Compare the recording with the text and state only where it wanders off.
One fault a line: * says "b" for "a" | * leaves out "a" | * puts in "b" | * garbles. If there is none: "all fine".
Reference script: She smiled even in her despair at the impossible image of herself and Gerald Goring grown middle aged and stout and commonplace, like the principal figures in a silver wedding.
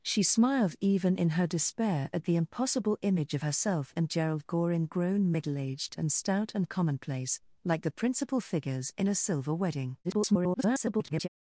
* garbles